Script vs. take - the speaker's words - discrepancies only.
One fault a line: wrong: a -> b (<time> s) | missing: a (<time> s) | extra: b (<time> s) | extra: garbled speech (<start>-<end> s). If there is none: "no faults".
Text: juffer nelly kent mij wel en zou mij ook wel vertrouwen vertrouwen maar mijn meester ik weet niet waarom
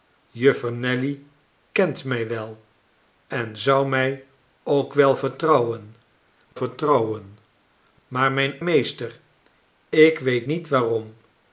no faults